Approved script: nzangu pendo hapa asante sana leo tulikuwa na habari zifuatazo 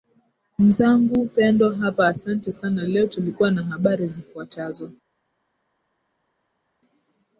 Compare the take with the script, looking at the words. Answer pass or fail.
pass